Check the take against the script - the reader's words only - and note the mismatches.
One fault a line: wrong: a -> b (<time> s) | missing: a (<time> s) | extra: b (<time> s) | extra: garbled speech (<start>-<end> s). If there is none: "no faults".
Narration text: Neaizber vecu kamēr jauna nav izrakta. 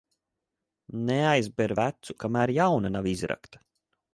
no faults